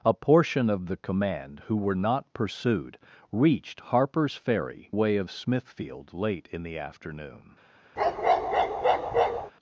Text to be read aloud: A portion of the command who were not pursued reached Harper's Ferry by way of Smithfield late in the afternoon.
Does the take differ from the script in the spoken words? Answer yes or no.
yes